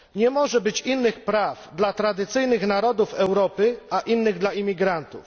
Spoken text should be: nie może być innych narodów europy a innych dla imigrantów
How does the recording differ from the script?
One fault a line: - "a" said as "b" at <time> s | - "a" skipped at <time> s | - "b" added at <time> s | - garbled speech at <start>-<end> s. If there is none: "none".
- "praw dla tradycyjnych" added at 1.2 s